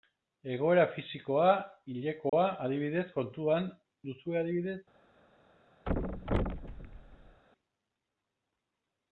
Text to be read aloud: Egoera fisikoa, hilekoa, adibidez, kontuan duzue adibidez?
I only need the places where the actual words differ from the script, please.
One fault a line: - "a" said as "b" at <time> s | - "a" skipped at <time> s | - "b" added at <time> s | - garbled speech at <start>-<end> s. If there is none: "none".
none